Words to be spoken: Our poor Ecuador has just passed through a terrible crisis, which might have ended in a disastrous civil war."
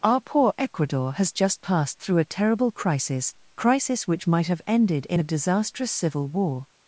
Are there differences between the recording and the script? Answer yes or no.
yes